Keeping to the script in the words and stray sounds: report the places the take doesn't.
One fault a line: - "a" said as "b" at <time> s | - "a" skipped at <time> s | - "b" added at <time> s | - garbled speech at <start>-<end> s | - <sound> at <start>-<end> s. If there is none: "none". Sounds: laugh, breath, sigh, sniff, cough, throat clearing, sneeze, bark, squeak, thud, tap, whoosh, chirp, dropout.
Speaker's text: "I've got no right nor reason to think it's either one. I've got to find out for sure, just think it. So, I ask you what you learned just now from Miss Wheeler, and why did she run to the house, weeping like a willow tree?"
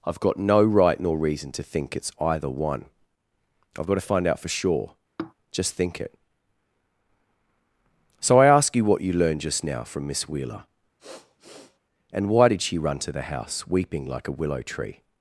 - sigh at 5.2-5.3 s
- sniff at 11.0-11.8 s